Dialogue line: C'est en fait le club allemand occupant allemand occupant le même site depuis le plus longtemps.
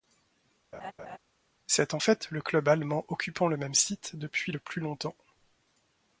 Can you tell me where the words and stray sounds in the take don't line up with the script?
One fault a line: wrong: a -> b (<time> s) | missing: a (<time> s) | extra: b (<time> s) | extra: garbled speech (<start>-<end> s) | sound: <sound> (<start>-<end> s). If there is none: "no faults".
sound: laugh (0.7-1.2 s)
missing: allemand occupant (3.5 s)